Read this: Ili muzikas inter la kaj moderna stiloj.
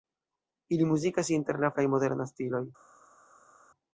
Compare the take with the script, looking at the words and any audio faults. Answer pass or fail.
pass